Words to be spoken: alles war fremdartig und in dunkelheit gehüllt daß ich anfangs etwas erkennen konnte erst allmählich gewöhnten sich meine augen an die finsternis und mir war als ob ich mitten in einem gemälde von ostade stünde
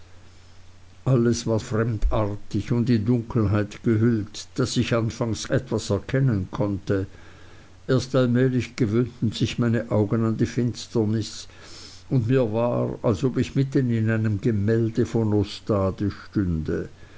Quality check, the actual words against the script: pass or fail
pass